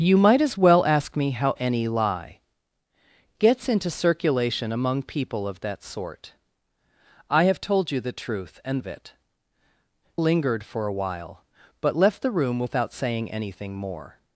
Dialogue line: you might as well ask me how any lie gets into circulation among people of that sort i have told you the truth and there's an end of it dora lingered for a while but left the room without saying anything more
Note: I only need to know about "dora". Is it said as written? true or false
false